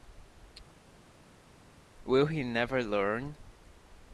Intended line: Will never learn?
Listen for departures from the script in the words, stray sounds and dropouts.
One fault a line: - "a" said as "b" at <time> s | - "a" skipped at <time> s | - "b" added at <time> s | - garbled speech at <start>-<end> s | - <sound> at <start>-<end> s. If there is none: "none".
- "he" added at 2.3 s